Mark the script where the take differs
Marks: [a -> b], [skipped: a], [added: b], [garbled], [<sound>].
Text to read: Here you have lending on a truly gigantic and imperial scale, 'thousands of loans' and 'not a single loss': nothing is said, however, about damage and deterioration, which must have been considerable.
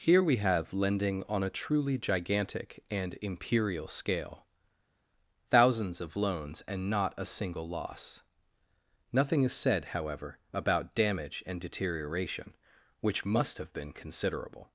Here [you -> we] have lending on a truly gigantic and imperial scale, 'thousands of loans' and 'not a single loss': nothing is said, however, about damage and deterioration, which must have been considerable.